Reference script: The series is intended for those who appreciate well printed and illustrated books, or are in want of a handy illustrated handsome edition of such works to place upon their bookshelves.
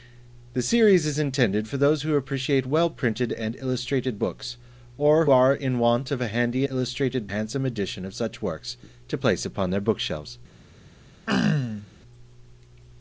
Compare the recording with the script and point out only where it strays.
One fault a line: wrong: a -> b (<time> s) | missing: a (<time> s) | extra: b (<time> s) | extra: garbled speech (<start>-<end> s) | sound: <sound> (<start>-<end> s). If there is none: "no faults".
sound: throat clearing (11.3-11.9 s)